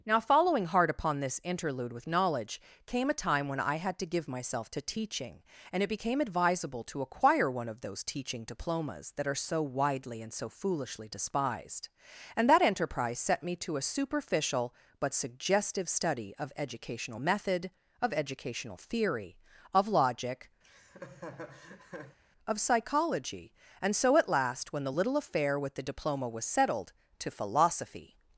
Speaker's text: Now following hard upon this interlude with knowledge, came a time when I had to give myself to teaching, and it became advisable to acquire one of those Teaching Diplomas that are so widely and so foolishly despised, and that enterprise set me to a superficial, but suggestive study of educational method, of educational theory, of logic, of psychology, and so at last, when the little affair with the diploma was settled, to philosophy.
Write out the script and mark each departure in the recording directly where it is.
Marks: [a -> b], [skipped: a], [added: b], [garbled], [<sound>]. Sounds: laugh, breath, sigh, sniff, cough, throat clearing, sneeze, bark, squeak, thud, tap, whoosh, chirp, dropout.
Now following hard upon this interlude with knowledge, came a time when I had to give myself to teaching, and it became advisable to acquire one of those Teaching Diplomas that are so widely and so foolishly despised, and that enterprise set me to a superficial, but suggestive study of educational method, of educational theory, of logic, [laugh] of psychology, and so at last, when the little affair with the diploma was settled, to philosophy.